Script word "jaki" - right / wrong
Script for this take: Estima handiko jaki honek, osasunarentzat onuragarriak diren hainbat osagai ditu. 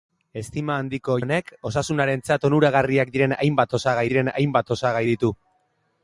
wrong